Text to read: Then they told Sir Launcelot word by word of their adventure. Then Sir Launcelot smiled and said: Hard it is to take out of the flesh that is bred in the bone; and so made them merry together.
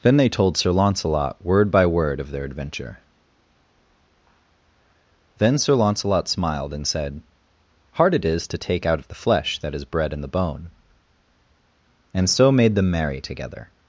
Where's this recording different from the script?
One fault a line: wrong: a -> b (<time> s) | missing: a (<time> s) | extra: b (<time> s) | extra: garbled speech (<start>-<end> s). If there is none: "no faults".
no faults